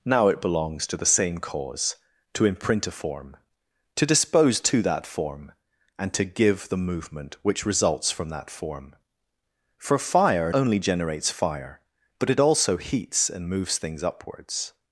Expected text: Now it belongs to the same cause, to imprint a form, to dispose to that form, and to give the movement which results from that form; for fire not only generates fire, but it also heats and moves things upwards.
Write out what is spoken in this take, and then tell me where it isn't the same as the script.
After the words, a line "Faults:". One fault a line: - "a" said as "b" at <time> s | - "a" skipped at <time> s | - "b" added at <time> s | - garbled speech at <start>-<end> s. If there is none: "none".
Now it belongs to the same cause, to imprint a form, to dispose to that form, and to give the movement which results from that form; for fire only generates fire, but it also heats and moves things upwards.
Faults:
- "not" skipped at 10.6 s